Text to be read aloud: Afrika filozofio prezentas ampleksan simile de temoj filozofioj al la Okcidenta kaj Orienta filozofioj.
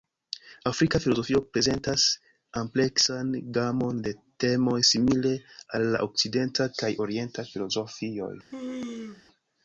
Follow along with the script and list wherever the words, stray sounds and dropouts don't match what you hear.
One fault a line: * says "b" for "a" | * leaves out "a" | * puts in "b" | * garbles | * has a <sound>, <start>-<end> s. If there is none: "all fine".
* says "gamon" for "simile"
* says "simile" for "filozofioj"
* has a sneeze, 8.5-9.2 s